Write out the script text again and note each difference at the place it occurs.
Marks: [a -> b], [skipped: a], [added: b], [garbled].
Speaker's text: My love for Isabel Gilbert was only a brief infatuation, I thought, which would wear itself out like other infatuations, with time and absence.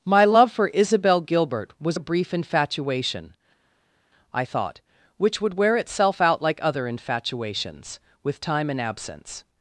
My love for Isabel Gilbert was [skipped: only] a brief infatuation, I thought, which would wear itself out like other infatuations, with time and absence.